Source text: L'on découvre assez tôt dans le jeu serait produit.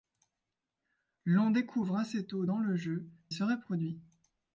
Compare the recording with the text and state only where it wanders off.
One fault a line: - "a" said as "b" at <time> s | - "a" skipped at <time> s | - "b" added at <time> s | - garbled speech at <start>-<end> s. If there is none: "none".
none